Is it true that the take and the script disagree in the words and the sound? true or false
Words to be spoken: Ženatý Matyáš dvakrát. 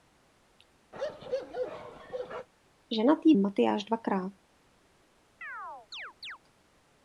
true